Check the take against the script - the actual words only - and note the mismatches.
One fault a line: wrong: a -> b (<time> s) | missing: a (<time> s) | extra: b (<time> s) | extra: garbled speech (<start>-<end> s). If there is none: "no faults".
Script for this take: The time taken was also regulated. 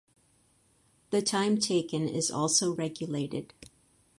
wrong: was -> is (2.1 s)